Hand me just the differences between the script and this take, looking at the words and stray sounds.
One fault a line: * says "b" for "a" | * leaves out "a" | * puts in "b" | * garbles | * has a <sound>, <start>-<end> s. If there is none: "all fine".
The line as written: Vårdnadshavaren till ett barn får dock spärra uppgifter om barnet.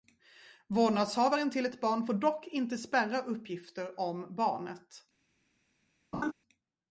* puts in "inte"
* has a laugh, 6.1-6.3 s